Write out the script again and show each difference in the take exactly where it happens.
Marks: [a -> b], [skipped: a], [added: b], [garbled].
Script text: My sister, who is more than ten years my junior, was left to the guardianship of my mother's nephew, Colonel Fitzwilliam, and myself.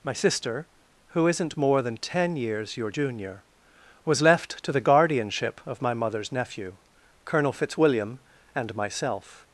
My sister, who [is -> isn't] more than ten years [my -> your] junior, was left to the guardianship of my mother's nephew, Colonel Fitzwilliam, and myself.